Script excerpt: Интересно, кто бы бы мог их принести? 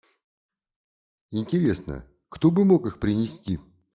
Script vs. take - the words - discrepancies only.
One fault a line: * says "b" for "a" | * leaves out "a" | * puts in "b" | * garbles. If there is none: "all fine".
* leaves out "бы"